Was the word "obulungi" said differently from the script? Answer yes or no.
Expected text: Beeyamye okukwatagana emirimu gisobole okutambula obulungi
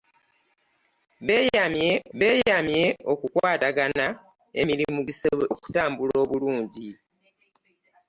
no